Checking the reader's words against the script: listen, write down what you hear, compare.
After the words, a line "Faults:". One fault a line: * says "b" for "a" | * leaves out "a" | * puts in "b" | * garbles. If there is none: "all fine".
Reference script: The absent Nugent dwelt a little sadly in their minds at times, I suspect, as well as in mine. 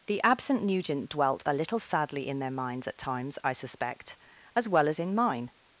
The absent Nugent dwelt a little sadly in their minds at times, I suspect, as well as in mine.
Faults:
all fine